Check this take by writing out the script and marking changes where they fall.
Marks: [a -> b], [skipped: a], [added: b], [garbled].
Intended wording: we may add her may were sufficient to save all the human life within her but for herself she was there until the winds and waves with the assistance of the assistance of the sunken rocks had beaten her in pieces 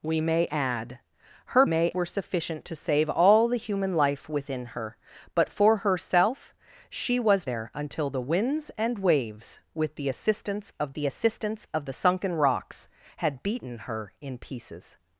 we may add her may were sufficient to save all the human life within her but for herself she was there until the winds and waves with the assistance of the assistance of the sunken rocks had beaten her in pieces